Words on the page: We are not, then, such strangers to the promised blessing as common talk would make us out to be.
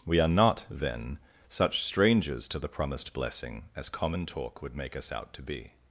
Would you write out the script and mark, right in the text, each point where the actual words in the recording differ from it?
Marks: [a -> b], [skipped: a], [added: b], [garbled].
We are not, then, such strangers to the promised blessing as common talk would make us out to be.